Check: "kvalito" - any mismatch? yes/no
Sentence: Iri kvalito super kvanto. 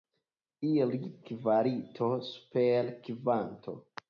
no